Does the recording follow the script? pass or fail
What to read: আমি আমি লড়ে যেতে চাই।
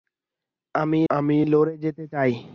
pass